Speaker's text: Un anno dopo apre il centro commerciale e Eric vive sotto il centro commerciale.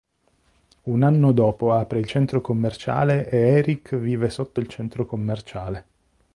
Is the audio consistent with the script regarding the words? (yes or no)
yes